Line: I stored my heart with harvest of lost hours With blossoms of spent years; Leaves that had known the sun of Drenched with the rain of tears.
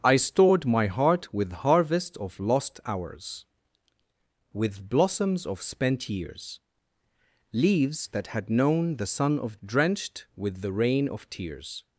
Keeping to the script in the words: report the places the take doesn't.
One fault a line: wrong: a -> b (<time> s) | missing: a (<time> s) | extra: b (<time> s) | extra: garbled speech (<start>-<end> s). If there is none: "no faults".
no faults